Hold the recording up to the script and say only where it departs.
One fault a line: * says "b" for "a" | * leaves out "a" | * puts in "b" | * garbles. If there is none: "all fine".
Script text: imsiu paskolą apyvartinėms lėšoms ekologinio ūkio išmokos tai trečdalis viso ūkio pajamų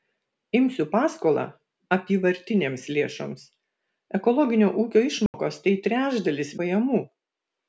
* leaves out "viso ūkio"